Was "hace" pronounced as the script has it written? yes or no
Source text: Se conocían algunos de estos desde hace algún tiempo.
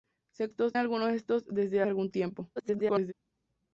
no